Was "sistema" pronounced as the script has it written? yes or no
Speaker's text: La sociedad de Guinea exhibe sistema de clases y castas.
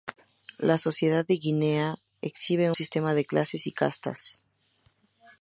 yes